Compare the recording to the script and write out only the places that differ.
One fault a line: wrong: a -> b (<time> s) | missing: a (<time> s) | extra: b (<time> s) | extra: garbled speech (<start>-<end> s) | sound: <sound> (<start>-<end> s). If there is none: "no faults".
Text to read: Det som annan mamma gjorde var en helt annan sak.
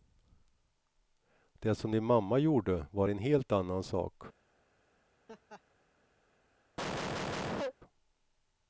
wrong: annan -> din (1.9 s)
sound: laugh (5.3-5.6 s)
sound: cough (6.8-7.7 s)